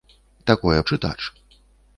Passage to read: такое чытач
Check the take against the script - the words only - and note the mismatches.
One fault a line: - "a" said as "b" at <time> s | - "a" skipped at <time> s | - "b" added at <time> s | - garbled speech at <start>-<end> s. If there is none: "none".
none